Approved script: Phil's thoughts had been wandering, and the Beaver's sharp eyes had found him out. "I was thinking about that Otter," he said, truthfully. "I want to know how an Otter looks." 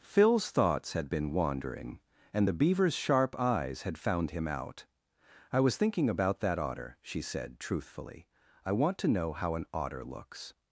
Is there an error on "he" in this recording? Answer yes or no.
yes